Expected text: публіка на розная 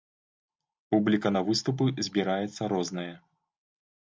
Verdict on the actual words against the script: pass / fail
fail